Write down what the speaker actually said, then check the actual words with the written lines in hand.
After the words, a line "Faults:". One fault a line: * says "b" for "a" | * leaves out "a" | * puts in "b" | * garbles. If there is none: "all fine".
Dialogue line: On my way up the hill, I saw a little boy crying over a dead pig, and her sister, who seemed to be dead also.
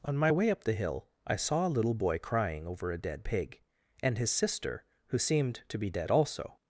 On my way up the hill, I saw a little boy crying over a dead pig, and his sister, who seemed to be dead also.
Faults:
* says "his" for "her"